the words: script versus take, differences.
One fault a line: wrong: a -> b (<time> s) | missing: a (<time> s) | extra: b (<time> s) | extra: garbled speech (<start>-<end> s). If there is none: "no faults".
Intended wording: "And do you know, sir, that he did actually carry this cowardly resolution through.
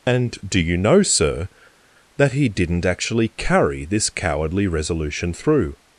wrong: did -> didn't (2.5 s)